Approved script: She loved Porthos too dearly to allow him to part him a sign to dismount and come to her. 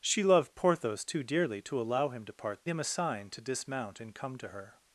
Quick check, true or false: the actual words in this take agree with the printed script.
true